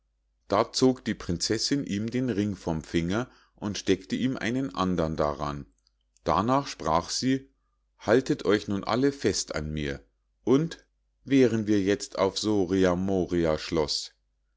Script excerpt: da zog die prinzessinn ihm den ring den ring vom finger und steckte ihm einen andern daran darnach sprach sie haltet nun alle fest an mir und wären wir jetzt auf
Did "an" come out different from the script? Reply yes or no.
no